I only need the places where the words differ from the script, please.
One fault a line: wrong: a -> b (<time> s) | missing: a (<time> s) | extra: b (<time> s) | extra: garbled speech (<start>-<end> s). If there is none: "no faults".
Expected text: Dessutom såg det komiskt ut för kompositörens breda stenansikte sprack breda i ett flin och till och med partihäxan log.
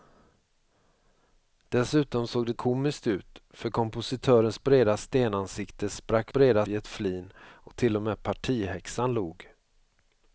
no faults